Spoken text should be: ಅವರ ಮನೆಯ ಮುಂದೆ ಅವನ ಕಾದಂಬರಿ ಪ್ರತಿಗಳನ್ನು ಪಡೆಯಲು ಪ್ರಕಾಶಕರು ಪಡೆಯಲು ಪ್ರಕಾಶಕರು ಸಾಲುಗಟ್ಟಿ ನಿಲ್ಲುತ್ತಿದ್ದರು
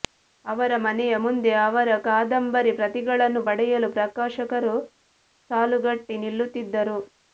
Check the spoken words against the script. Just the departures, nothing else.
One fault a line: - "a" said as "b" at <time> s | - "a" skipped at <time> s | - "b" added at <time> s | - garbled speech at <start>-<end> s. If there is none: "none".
- "ಅವನ" said as "ಅವರ" at 1.6 s
- "ಪಡೆಯಲು ಪ್ರಕಾಶಕರು" skipped at 4.7 s